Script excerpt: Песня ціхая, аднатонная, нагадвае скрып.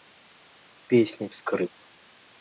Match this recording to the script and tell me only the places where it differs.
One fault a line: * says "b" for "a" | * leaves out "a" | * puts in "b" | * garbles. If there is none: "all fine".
* leaves out "ціхая аднатонная нагадвае"